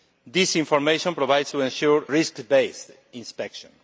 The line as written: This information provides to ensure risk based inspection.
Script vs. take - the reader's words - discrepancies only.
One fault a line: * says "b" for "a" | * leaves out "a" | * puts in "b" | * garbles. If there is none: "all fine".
all fine